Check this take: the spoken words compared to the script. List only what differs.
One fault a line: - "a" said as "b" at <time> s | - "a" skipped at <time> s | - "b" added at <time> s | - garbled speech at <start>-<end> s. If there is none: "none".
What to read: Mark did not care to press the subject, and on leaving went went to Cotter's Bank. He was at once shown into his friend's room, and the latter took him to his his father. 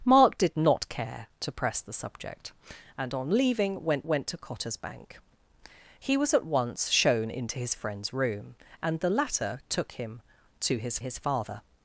none